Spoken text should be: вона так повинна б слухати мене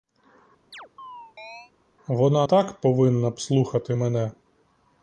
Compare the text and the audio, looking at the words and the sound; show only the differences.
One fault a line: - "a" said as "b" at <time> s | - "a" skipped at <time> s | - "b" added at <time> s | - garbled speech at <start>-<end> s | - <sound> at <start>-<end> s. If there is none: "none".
- chirp at 0.7-1.7 s